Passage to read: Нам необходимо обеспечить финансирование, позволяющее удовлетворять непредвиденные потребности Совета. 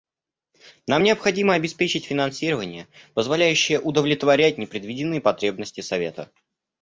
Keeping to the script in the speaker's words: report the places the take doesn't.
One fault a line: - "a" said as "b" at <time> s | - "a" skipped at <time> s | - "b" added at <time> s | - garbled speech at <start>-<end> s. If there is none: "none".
none